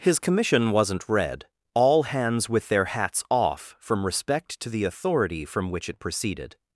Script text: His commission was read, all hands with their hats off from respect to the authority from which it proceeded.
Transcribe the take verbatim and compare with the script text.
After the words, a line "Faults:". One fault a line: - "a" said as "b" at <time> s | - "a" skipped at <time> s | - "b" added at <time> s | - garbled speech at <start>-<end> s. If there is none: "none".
His commission wasn't read, all hands with their hats off from respect to the authority from which it proceeded.
Faults:
- "was" said as "wasn't" at 0.7 s